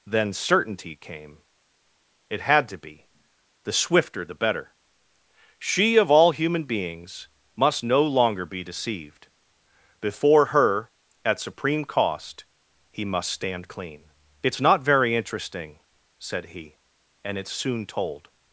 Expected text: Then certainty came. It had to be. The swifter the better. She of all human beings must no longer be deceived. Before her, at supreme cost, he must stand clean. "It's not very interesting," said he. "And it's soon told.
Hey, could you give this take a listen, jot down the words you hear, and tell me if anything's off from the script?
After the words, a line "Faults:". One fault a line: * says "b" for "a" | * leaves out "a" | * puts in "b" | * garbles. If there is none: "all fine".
Then certainty came. It had to be. The swifter the better. She of all human beings must no longer be deceived. Before her, at supreme cost, he must stand clean. "It's not very interesting," said he. "And it's soon told.
Faults:
all fine